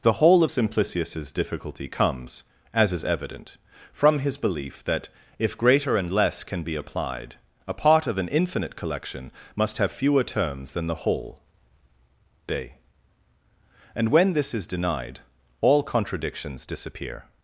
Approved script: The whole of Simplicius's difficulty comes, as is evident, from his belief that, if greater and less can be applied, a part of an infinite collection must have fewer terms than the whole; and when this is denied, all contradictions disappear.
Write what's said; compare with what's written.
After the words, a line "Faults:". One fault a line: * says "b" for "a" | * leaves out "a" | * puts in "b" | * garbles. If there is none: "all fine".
The whole of Simplicius's difficulty comes, as is evident, from his belief that, if greater and less can be applied, a part of an infinite collection must have fewer terms than the whole; day and when this is denied, all contradictions disappear.
Faults:
* puts in "day"